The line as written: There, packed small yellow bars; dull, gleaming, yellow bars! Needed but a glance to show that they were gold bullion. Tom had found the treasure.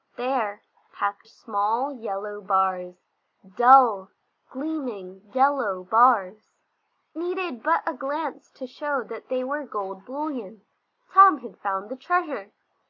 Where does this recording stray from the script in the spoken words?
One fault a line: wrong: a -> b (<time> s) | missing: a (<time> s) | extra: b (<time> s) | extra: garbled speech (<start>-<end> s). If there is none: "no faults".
no faults